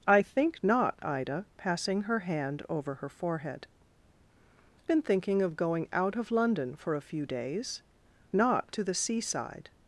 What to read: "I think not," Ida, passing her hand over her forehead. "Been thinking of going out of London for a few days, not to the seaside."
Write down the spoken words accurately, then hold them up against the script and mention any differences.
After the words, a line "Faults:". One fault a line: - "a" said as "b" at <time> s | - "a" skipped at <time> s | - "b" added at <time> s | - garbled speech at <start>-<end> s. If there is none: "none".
"I think not," Ida, passing her hand over her forehead. "Been thinking of going out of London for a few days, not to the seaside."
Faults:
none